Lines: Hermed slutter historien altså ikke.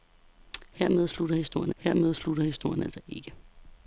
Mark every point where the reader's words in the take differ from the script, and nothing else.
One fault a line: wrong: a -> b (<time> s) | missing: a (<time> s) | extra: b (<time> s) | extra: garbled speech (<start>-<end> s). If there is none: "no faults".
extra: hermed slutter historien (1.8 s)